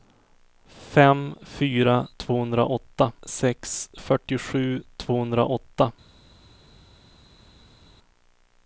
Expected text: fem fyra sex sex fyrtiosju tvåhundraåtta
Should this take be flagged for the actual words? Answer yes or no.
yes